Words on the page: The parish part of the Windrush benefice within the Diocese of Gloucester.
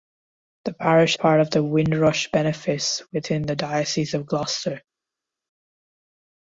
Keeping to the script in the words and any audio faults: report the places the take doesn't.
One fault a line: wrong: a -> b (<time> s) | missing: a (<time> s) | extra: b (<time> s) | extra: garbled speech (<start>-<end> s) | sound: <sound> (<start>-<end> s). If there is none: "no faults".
no faults